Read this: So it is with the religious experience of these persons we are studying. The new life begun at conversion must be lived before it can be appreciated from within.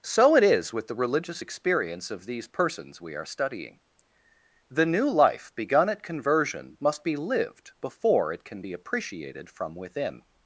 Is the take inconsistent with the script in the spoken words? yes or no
no